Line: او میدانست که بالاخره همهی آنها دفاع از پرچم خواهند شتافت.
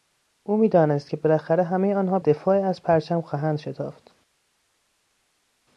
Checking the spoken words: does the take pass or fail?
pass